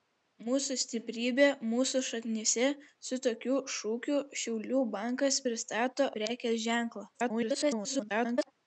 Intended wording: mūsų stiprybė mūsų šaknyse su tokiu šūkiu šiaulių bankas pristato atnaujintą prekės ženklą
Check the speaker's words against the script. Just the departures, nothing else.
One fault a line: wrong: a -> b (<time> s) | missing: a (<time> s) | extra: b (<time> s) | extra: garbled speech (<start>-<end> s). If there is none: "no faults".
missing: atnaujintą (6.1 s)
extra: garbled speech (7.1-8.5 s)